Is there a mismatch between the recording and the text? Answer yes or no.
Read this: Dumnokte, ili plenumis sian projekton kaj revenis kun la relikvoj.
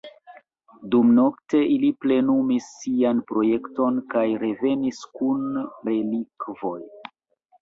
yes